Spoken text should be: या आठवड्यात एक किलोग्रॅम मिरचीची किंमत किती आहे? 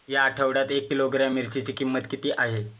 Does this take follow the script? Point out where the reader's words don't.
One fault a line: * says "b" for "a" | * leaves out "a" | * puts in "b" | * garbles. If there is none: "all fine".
all fine